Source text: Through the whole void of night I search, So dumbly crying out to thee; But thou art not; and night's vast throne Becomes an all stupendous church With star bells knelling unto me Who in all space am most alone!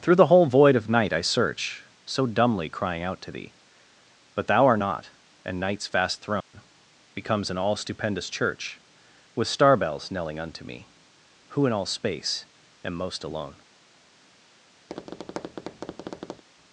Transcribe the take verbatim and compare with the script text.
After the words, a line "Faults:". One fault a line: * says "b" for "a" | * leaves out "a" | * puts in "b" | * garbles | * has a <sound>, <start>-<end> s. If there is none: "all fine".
Through the whole void of night I search, So dumbly crying out to thee; But thou art not; and night's vast throne Becomes an all stupendous church With star bells knelling unto me Who in all space am most alone!
Faults:
* has a dropout, 6.4-6.5 s
* has a tap, 14.9-16.4 s